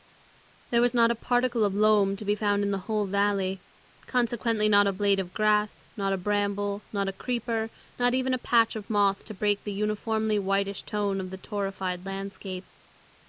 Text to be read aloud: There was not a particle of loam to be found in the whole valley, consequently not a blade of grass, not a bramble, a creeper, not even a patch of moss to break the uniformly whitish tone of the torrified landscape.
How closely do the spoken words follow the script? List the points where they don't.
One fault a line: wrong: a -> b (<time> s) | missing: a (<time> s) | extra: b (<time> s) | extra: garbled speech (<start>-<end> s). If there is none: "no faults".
extra: not (6.9 s)